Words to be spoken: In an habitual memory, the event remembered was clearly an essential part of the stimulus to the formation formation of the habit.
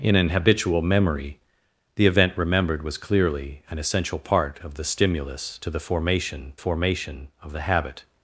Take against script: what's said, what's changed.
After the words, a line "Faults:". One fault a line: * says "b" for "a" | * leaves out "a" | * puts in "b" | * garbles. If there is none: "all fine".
In an habitual memory, the event remembered was clearly an essential part of the stimulus to the formation formation of the habit.
Faults:
all fine